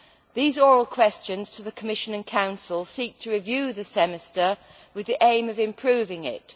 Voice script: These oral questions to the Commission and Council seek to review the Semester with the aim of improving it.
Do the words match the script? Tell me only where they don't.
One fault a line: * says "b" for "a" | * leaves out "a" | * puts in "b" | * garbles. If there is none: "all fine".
all fine